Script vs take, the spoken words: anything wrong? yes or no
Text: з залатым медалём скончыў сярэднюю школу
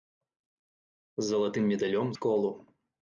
yes